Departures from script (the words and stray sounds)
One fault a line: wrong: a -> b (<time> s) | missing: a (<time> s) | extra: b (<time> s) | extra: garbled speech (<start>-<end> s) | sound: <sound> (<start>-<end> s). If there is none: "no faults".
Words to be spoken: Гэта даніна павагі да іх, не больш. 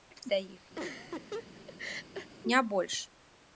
missing: даніна павагі (0.3 s)
sound: laugh (0.8-2.3 s)